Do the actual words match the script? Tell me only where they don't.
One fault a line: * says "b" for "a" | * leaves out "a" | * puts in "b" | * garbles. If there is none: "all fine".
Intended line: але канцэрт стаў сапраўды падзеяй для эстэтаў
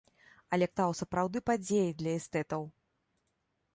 * leaves out "канцэрт"